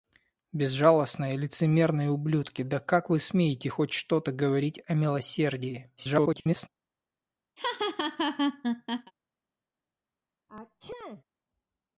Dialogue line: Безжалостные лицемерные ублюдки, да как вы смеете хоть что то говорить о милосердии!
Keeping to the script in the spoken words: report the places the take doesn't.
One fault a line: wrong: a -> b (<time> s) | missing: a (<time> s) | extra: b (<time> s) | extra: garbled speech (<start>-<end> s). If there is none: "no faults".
extra: garbled speech (6.0-6.7 s)